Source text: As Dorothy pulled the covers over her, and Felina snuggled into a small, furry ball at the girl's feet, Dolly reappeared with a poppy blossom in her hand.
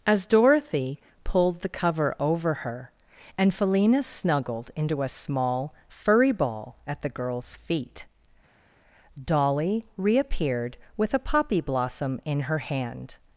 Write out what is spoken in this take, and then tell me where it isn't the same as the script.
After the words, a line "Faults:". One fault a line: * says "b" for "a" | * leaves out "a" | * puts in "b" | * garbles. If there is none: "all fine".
As Dorothy pulled the cover over her, and Felina snuggled into a small, furry ball at the girl's feet, Dolly reappeared with a poppy blossom in her hand.
Faults:
* says "cover" for "covers"